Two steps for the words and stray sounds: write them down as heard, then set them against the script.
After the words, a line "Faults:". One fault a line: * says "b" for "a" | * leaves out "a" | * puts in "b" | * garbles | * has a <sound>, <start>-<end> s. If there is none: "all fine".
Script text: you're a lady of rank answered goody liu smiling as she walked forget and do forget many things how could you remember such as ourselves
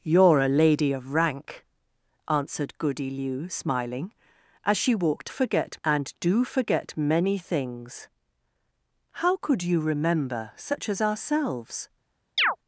you're a lady of rank answered goody liu smiling as she walked forget and do forget many things how could you remember such as ourselves
Faults:
* has a chirp, 12.4-12.6 s